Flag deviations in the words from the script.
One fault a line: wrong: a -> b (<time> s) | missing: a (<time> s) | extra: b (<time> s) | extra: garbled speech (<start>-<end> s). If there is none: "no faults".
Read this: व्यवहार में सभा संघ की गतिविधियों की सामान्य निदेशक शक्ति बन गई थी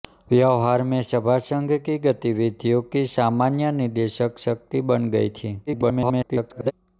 extra: garbled speech (5.7-6.7 s)